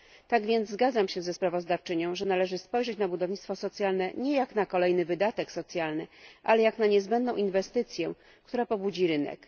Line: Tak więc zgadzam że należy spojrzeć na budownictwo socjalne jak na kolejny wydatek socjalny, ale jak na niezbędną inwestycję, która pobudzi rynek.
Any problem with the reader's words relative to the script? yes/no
yes